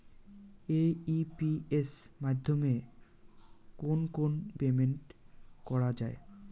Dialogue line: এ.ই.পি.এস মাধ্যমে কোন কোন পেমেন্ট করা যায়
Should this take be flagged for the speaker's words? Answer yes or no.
no